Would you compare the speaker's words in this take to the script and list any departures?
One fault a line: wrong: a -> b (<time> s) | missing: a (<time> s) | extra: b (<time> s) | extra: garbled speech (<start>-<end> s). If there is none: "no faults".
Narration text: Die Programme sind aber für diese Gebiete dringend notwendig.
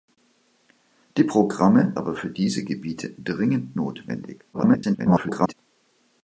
missing: sind (1.9 s)
extra: garbled speech (4.5-5.5 s)